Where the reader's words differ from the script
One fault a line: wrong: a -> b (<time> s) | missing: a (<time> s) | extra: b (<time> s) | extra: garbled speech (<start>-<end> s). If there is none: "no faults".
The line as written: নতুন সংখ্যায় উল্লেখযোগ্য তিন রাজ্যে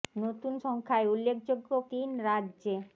no faults